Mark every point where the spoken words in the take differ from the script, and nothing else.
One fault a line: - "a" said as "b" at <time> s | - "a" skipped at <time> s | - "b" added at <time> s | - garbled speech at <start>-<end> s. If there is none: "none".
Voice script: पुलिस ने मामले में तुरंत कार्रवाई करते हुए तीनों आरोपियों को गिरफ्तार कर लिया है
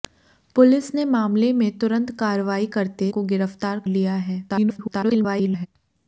- "हुए तीनों आरोपियों" skipped at 3.1 s
- "कर" skipped at 3.8 s
- garbled speech at 4.5-5.7 s